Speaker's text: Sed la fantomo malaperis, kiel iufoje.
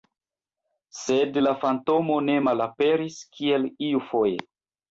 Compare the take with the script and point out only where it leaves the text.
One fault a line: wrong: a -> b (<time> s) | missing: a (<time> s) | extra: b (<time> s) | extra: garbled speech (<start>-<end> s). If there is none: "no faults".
extra: ne (2.3 s)